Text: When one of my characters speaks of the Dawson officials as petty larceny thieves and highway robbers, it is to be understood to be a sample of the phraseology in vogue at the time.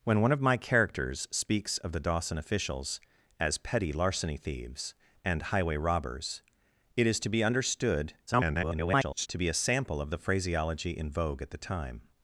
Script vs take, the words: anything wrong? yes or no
yes